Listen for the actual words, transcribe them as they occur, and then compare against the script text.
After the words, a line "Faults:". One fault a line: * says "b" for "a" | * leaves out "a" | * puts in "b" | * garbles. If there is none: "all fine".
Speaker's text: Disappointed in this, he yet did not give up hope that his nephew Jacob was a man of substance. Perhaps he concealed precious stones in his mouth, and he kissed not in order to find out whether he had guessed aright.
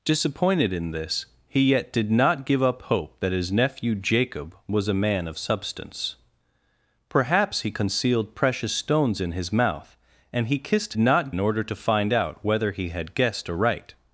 Disappointed in this, he yet did not give up hope that his nephew Jacob was a man of substance. Perhaps he concealed precious stones in his mouth, and he kissed not in order to find out whether he had guessed aright.
Faults:
all fine